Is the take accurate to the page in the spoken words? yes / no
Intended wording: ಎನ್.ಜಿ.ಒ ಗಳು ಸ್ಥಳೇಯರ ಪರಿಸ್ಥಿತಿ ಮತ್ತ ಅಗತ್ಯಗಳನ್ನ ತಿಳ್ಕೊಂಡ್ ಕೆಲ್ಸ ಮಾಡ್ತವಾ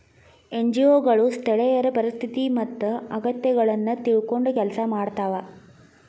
yes